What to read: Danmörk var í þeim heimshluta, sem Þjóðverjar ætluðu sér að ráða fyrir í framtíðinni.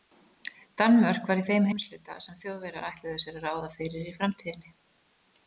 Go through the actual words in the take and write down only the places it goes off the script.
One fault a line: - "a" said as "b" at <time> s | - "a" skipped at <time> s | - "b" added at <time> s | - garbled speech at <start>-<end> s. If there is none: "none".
none